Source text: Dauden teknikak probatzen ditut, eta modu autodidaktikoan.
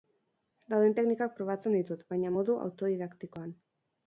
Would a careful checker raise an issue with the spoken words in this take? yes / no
yes